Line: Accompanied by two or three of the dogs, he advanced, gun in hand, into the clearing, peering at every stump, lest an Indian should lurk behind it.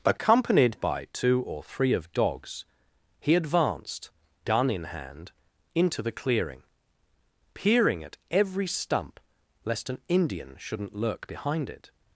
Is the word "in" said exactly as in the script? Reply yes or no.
yes